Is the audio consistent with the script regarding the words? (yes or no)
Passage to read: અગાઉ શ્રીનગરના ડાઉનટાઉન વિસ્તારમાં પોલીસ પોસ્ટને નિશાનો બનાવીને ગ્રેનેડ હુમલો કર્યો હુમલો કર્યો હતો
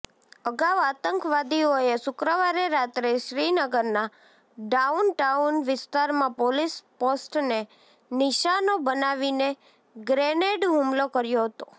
no